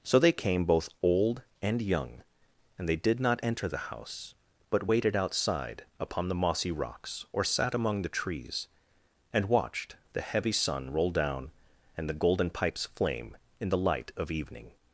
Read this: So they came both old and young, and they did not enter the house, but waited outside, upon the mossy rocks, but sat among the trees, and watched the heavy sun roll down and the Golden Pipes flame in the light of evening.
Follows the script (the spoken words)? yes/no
no